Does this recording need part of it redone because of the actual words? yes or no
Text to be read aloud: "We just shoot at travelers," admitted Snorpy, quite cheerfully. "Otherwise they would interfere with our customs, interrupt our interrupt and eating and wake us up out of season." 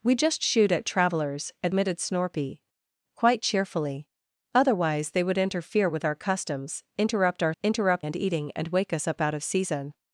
no